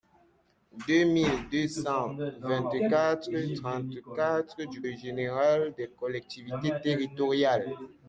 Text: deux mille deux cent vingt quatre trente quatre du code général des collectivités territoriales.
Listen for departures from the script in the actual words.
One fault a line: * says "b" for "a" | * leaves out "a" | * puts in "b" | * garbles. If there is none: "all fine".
* leaves out "code"